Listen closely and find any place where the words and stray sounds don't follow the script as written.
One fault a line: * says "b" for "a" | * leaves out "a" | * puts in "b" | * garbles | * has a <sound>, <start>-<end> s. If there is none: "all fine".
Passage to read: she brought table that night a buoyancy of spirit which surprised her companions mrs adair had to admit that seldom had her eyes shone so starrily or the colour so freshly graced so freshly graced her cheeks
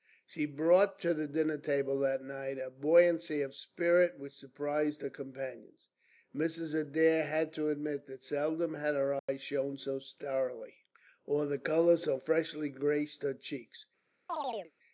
* puts in "to the dinner"
* has a dropout, 9.2-9.3 s
* leaves out "so freshly graced"
* has a chirp, 14.3-14.7 s